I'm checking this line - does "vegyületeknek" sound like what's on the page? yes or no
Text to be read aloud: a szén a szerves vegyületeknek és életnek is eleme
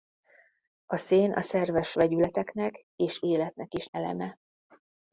yes